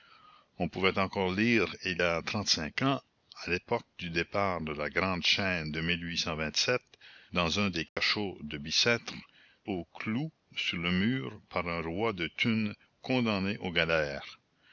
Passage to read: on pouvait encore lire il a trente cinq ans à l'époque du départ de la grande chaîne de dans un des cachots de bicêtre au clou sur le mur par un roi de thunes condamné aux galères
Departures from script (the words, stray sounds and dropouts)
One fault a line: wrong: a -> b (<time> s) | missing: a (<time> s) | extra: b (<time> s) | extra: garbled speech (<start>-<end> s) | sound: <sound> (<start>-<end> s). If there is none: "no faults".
sound: dropout (7.9-8.0 s)